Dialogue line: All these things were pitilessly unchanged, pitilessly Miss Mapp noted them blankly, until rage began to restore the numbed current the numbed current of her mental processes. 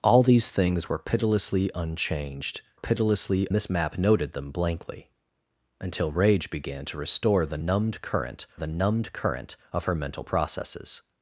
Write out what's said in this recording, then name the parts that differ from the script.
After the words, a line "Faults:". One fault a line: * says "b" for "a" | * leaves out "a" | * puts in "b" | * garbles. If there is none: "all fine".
All these things were pitilessly unchanged, pitilessly Miss Mapp noted them blankly, until rage began to restore the numbed current the numbed current of her mental processes.
Faults:
all fine